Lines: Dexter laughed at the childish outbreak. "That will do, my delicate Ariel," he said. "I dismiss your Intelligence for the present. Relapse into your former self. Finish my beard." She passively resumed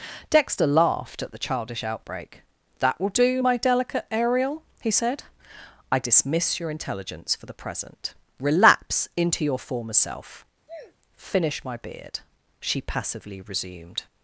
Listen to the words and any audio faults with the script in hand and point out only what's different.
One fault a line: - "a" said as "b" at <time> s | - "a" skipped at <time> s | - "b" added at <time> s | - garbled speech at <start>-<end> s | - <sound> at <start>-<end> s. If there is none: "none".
- sneeze at 10.7-11.0 s